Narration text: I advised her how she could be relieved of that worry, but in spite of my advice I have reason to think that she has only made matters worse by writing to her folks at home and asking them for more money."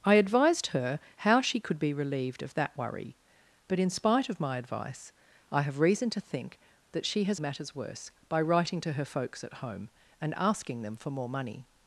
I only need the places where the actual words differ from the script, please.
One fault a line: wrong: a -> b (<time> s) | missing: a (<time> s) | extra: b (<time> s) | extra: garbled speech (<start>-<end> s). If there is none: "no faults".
missing: only made (7.4 s)